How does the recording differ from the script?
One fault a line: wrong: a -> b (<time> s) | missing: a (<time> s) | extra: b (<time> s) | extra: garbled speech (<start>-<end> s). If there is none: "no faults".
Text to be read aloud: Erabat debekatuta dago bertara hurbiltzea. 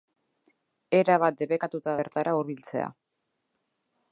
missing: dago (1.9 s)